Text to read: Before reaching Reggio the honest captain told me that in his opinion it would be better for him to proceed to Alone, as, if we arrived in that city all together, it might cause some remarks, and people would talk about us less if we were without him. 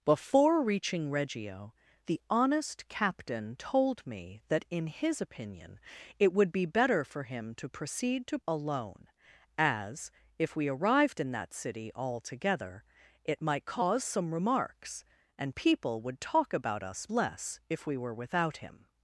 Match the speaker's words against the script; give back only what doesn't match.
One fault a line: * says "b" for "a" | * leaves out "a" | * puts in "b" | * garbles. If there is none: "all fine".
all fine